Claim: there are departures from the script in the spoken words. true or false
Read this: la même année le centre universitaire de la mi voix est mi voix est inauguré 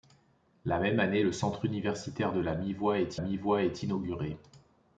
false